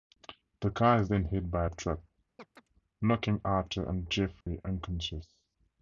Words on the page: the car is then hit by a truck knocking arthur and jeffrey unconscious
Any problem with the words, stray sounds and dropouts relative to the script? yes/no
yes